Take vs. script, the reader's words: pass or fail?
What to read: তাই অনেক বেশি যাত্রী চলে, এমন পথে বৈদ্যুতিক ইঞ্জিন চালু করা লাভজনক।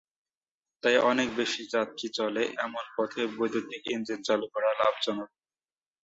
pass